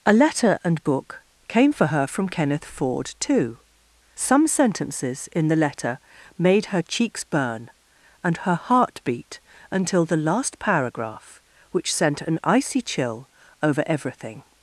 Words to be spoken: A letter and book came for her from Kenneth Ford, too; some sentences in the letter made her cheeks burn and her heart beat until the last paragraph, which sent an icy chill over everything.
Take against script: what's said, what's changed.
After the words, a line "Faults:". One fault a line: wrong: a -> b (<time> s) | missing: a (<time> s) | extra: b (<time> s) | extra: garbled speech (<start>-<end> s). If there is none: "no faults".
A letter and book came for her from Kenneth Ford, too; some sentences in the letter made her cheeks burn and her heart beat until the last paragraph, which sent an icy chill over everything.
Faults:
no faults